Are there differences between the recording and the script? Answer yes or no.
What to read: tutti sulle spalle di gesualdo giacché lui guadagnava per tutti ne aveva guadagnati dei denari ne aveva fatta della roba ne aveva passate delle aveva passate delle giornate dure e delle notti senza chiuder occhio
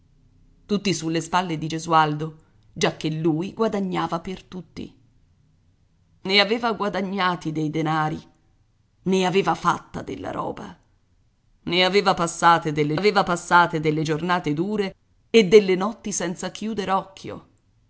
no